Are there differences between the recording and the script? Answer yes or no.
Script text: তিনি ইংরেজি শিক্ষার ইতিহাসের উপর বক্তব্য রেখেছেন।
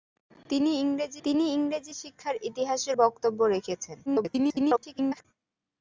yes